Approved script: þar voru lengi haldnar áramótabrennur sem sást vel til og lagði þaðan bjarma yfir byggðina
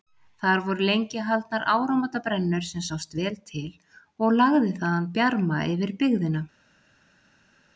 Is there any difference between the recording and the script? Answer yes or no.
no